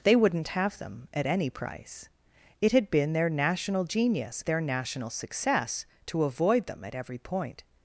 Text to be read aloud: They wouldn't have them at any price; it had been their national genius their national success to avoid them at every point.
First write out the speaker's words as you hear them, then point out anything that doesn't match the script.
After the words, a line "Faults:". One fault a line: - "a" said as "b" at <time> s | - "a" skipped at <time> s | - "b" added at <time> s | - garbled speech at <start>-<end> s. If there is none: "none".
They wouldn't have them at any price; it had been their national genius their national success to avoid them at every point.
Faults:
none